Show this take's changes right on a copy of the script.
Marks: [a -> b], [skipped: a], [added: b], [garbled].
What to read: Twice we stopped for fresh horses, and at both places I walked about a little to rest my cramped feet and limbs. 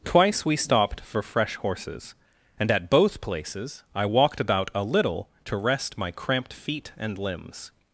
Twice we stopped for fresh horses, and at both places I walked about a little to rest my cramped feet and limbs.